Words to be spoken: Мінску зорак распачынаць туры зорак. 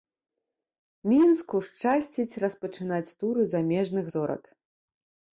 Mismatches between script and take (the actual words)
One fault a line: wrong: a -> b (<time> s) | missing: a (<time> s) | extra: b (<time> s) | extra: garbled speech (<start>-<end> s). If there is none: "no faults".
wrong: зорак -> шчасціць (1.7 s)
extra: замежных (3.6 s)